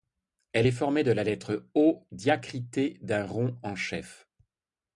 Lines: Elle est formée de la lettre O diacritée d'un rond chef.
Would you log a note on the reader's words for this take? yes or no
yes